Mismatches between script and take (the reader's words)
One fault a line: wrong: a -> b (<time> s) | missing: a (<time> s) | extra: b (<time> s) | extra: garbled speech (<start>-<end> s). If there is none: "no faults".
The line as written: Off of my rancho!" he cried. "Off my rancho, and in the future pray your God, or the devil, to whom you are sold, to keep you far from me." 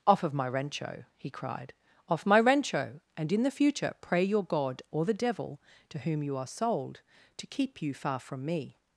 no faults